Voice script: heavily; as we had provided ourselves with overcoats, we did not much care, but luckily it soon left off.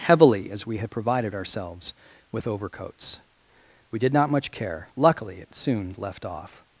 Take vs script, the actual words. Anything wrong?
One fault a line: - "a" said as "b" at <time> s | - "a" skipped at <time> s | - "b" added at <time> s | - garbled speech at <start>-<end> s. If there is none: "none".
- "but" skipped at 4.9 s